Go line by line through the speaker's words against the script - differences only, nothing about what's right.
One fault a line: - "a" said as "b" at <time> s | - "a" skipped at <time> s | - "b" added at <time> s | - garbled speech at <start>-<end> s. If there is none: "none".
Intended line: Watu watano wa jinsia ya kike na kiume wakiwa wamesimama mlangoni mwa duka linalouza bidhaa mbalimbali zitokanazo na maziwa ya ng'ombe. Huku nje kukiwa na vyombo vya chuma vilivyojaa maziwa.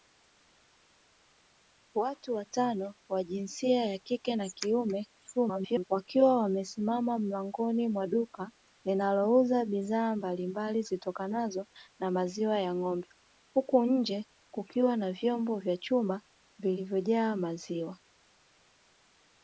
- garbled speech at 5.4-5.9 s